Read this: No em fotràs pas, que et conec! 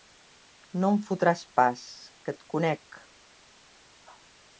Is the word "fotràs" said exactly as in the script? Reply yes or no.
yes